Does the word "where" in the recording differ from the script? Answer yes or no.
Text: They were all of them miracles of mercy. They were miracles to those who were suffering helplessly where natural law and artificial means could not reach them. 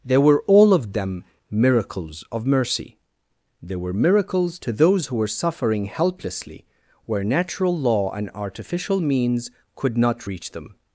no